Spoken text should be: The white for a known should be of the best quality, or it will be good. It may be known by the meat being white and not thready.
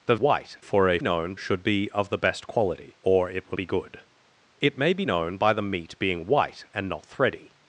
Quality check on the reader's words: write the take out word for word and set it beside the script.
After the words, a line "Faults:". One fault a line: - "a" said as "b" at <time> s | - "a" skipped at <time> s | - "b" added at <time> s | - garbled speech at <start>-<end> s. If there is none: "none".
The white for a known should be of the best quality, or it will be good. It may be known by the meat being white and not thready.
Faults:
none